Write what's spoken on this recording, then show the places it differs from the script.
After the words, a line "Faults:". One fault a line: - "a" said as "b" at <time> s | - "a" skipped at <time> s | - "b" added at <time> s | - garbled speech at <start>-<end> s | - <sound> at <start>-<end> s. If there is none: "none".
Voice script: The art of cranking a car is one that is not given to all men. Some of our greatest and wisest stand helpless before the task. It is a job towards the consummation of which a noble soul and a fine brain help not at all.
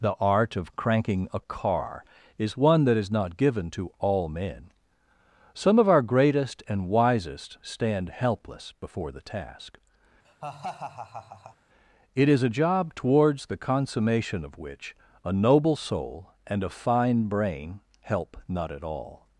The art of cranking a car is one that is not given to all men. Some of our greatest and wisest stand helpless before the task. It is a job towards the consummation of which a noble soul and a fine brain help not at all.
Faults:
- laugh at 10.2-11.6 s